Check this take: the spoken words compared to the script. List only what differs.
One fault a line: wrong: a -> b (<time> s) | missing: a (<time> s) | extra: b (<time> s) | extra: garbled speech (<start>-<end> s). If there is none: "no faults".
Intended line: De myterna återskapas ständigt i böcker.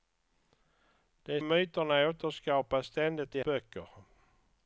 no faults